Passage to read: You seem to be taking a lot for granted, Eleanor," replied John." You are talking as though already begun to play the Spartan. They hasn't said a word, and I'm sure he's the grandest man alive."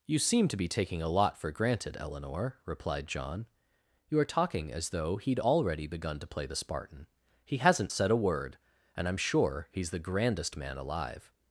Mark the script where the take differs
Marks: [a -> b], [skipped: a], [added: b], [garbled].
You seem to be taking a lot for granted, Eleanor," replied John." You are talking as though [added: he'd] already begun to play the Spartan. [They -> He] hasn't said a word, and I'm sure he's the grandest man alive."